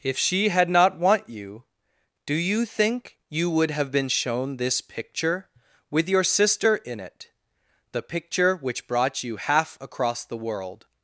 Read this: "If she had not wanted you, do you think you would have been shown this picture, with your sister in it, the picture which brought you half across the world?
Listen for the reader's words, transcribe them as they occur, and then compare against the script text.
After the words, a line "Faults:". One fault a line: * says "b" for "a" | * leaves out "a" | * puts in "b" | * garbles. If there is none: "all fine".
"If she had not want you, do you think you would have been shown this picture, with your sister in it, the picture which brought you half across the world?
Faults:
* says "want" for "wanted"